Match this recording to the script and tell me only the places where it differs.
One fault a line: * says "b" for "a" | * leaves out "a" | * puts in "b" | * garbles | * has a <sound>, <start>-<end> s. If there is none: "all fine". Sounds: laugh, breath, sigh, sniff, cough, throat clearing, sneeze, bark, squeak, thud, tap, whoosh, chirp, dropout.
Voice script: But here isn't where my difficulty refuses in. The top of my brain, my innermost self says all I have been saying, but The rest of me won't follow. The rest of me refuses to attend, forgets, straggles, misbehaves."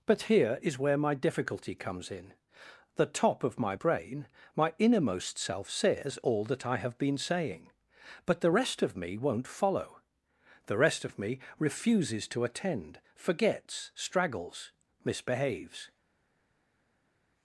* says "is" for "isn't"
* says "comes" for "refuses"
* puts in "that"